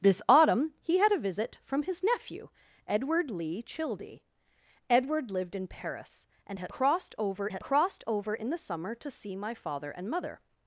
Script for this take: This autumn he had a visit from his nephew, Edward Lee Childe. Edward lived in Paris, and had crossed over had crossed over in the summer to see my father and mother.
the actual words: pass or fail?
pass